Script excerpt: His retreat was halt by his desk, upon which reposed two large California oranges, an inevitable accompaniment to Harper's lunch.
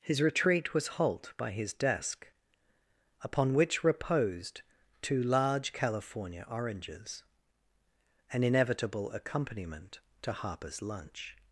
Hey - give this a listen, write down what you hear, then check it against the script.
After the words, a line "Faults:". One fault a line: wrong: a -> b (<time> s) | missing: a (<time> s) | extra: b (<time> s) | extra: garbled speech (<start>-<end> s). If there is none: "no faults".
His retreat was halt by his desk, upon which reposed two large California oranges, an inevitable accompaniment to Harper's lunch.
Faults:
no faults